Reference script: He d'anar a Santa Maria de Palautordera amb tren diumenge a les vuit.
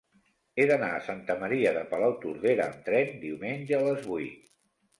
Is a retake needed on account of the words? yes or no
no